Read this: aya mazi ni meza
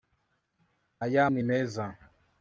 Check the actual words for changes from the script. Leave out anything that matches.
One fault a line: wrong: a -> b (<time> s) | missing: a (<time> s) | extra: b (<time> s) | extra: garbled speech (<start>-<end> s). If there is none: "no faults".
missing: mazi (1.3 s)